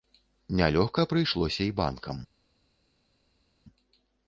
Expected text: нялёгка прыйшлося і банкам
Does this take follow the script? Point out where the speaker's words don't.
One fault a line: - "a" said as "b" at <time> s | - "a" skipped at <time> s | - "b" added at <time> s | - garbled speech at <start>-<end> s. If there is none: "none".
none